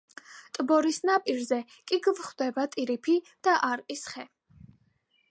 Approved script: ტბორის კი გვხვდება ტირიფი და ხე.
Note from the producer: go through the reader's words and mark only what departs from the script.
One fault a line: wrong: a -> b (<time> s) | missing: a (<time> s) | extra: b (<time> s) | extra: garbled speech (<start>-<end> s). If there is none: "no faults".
extra: ნაპირზე (1.1 s)
extra: არყის (3.7 s)